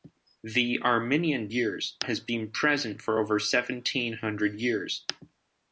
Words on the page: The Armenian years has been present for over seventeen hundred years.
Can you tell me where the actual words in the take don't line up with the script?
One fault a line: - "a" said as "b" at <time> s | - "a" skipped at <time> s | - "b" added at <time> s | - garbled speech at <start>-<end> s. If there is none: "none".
none